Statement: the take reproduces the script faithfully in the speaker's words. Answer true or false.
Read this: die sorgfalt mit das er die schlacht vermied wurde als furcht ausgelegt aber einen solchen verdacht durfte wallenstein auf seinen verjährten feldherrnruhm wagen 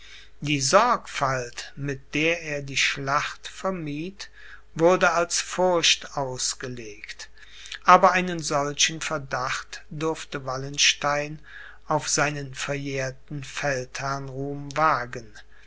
false